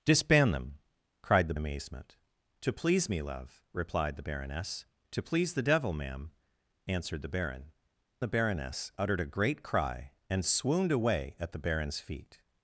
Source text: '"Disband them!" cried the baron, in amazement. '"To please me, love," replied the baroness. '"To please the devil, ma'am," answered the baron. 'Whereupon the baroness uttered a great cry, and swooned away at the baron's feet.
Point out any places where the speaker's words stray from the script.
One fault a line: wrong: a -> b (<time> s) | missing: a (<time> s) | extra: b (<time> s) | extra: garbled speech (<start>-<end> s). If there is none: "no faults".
missing: baron in (1.5 s)
missing: Whereupon (7.7 s)